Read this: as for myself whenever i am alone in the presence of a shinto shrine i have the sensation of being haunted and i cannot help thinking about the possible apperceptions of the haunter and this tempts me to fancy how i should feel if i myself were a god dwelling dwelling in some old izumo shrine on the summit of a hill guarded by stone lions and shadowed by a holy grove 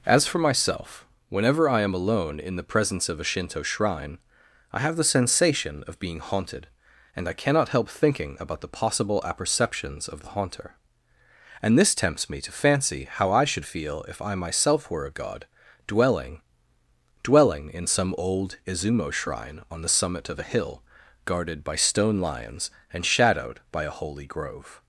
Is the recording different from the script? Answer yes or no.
no